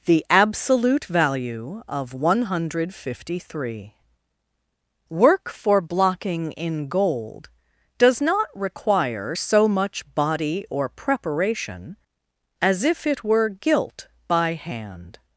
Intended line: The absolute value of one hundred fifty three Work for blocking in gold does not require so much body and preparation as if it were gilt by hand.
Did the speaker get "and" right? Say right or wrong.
wrong